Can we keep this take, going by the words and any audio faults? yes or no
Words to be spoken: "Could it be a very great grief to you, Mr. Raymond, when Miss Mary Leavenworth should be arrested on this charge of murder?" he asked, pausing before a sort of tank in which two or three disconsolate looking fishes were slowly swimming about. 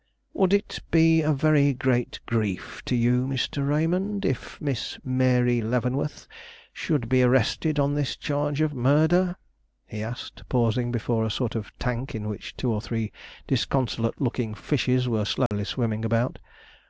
no